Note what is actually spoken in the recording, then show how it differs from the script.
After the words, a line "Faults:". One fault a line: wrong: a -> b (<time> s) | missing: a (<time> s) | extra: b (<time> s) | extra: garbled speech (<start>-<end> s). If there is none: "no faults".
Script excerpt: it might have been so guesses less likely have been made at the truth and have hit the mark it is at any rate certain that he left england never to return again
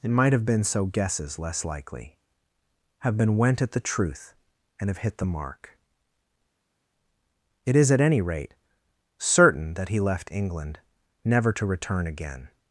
it might have been so guesses less likely have been went at the truth and have hit the mark it is at any rate certain that he left england never to return again
Faults:
wrong: made -> went (3.4 s)